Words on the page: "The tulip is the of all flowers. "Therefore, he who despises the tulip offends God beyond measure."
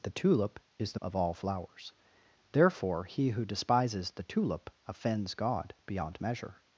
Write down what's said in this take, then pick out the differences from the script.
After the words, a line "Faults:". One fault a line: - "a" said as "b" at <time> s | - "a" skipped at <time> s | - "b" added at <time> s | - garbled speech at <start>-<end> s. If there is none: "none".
"The tulip is the of all flowers. "Therefore, he who despises the tulip offends God beyond measure."
Faults:
none